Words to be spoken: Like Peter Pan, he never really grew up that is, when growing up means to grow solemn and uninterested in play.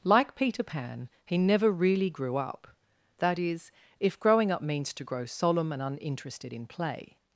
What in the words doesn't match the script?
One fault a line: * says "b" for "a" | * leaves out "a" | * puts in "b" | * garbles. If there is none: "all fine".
* says "if" for "when"